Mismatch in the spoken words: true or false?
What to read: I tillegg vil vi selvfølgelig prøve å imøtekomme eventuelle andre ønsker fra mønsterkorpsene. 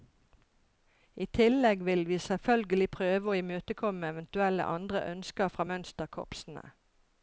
false